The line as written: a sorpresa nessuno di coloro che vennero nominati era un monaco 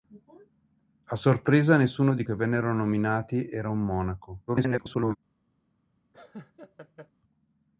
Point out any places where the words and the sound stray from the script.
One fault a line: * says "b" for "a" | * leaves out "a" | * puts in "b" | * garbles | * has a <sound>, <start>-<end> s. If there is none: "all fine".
* leaves out "coloro"
* garbles
* has a laugh, 6.1-7.1 s